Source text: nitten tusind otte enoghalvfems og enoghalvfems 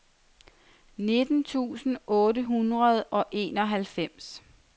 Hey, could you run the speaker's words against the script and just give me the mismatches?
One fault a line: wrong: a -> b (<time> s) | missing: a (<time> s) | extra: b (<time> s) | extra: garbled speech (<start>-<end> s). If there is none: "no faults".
wrong: enoghalvfems -> hundrede (2.4 s)